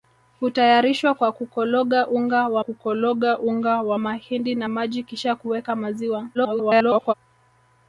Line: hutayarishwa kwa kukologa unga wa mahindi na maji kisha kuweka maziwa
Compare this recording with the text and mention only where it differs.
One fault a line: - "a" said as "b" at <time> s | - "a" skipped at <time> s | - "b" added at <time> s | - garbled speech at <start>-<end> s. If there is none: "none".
- "kukologa unga wa" added at 2.6 s
- garbled speech at 6.3-7.1 s